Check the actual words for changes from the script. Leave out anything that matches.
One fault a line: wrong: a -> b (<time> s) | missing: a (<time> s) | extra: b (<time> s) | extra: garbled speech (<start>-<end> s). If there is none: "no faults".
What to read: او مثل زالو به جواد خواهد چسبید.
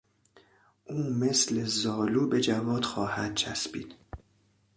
no faults